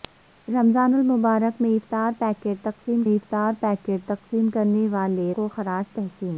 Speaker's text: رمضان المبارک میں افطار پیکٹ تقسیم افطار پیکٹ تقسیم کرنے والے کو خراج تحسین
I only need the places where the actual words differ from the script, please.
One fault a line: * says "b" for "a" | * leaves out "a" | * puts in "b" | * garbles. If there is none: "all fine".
all fine